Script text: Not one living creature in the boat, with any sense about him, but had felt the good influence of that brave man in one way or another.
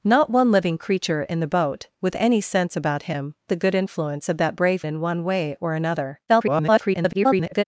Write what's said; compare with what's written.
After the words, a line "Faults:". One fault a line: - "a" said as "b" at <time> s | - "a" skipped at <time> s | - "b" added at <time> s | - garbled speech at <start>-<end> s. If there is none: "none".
Not one living creature in the boat, with any sense about him, the good influence of that brave in one way or another. [garbled]
Faults:
- "but had felt" skipped at 3.4 s
- "man" skipped at 4.8 s
- garbled speech at 6.3-7.6 s